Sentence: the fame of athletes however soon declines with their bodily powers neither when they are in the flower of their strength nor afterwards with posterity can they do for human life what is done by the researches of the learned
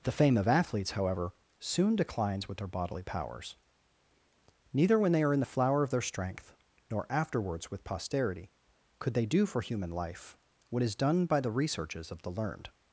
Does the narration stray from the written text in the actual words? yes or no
yes